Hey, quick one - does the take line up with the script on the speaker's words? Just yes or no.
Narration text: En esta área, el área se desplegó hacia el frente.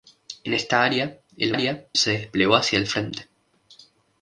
yes